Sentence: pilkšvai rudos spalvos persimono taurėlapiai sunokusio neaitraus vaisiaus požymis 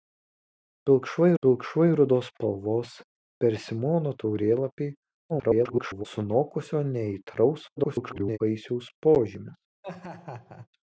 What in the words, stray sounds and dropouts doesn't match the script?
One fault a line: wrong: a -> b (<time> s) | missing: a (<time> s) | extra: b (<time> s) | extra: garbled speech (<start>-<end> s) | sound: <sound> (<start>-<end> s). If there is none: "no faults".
extra: pilkšvai (1.5 s)
extra: garbled speech (5.3-6.1 s)
extra: garbled speech (7.8-8.4 s)
sound: laugh (9.8-10.7 s)